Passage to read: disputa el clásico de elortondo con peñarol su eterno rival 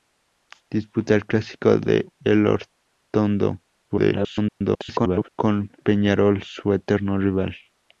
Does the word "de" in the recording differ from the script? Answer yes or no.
no